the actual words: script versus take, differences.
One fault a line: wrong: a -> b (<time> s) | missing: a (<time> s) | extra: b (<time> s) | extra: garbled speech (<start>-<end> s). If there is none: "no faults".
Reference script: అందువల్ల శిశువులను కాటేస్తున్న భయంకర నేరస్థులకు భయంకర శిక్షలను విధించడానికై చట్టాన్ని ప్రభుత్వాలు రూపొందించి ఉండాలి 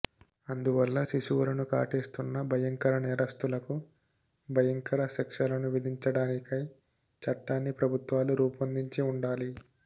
no faults